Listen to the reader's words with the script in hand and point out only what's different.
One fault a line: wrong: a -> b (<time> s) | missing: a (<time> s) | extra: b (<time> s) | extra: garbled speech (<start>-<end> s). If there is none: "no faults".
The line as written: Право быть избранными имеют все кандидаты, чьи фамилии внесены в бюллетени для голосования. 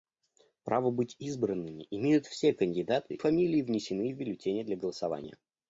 missing: чьи (3.2 s)